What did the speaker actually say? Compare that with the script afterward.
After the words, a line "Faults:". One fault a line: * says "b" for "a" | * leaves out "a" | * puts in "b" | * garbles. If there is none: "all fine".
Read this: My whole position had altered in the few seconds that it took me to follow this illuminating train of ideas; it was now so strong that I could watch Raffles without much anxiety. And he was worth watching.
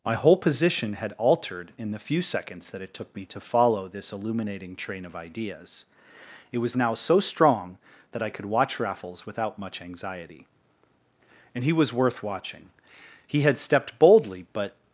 My whole position had altered in the few seconds that it took me to follow this illuminating train of ideas; it was now so strong that I could watch Raffles without much anxiety. And he was worth watching. He had stepped boldly but
Faults:
* puts in "He had stepped boldly but"